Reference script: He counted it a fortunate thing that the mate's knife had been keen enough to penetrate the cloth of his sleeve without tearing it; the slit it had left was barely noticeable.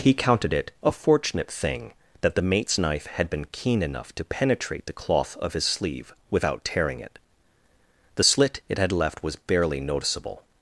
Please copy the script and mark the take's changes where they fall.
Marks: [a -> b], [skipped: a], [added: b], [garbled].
He counted it a fortunate thing that the mate's knife had been keen enough to penetrate the cloth of his sleeve without tearing it; the slit it had left was barely noticeable.